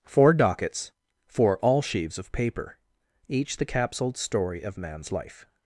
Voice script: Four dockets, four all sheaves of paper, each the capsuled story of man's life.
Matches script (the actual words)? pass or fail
pass